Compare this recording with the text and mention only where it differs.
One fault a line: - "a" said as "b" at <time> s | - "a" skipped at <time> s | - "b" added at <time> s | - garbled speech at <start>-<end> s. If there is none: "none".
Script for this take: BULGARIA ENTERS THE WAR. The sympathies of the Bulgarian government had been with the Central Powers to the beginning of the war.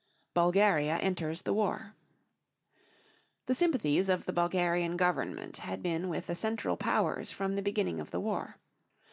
- "to" said as "from" at 7.3 s